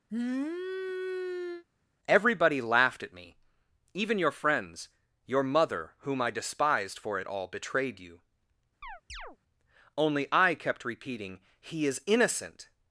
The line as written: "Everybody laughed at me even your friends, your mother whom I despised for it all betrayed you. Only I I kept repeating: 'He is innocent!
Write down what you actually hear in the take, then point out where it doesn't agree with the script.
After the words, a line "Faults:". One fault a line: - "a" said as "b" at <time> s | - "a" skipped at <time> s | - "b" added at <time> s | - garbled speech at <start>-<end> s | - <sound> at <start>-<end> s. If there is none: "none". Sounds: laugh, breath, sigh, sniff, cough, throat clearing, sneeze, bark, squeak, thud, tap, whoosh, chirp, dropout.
"Everybody laughed at me even your friends, your mother whom I despised for it all betrayed you. Only I kept repeating: 'He is innocent!
Faults:
- sniff at 0.1-1.6 s
- chirp at 8.8-9.4 s
- "I" skipped at 10.5 s